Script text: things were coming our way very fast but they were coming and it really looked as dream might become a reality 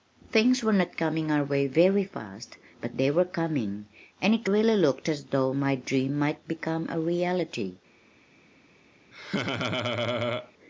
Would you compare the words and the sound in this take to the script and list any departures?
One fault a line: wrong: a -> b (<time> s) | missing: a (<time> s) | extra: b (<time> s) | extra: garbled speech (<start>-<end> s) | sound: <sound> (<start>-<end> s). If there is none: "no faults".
extra: not (0.7 s)
extra: though my (5.2 s)
sound: laugh (9.1-10.5 s)